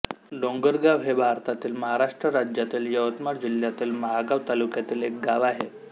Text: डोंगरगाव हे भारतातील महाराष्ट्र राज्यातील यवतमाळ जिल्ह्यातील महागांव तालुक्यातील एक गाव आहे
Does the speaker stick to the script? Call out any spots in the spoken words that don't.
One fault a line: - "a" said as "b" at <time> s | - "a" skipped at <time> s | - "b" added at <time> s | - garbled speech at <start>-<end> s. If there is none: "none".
none